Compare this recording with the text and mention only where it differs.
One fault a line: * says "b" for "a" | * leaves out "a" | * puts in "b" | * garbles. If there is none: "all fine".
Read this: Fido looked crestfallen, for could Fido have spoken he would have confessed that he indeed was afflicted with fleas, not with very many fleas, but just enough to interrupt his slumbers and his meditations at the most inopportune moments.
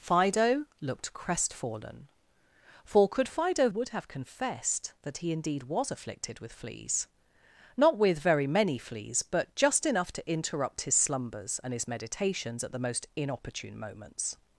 * leaves out "have spoken he"